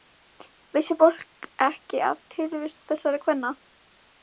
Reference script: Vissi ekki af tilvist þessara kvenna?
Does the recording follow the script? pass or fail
fail